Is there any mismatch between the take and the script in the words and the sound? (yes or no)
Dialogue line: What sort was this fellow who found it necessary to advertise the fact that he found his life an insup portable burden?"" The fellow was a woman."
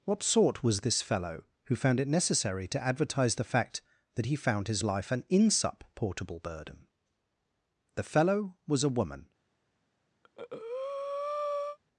yes